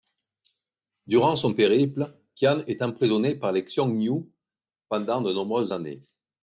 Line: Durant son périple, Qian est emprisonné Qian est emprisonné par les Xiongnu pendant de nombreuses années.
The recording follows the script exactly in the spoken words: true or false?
false